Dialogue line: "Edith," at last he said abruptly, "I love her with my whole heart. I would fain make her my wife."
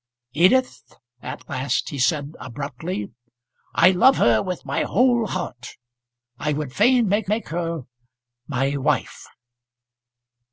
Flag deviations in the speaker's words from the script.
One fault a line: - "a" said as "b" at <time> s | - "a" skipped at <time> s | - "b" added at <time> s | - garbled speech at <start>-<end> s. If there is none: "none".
- "make" added at 7.3 s